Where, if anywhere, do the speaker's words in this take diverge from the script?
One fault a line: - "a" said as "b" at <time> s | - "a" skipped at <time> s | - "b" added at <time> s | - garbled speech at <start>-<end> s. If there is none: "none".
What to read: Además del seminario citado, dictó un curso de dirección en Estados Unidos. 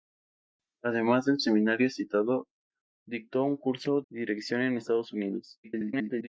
- "de" skipped at 4.0 s
- garbled speech at 5.6-6.3 s